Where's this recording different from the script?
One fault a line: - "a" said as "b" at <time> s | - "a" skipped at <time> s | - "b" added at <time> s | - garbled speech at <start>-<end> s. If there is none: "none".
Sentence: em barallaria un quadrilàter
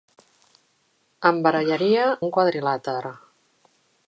none